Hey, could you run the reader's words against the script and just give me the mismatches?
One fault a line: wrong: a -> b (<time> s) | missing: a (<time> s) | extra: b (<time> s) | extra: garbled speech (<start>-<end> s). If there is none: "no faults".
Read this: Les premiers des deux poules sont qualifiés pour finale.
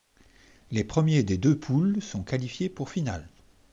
no faults